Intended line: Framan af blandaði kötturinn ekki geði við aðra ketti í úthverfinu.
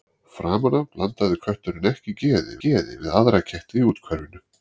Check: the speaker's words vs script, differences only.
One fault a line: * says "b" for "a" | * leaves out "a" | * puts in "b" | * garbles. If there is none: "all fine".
* puts in "geði"